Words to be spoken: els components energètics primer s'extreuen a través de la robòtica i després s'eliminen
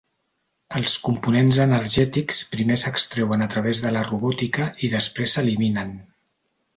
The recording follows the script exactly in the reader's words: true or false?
true